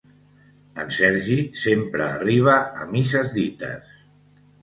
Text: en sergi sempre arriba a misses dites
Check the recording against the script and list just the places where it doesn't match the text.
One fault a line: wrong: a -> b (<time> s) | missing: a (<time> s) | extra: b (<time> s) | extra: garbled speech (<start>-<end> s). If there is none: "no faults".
no faults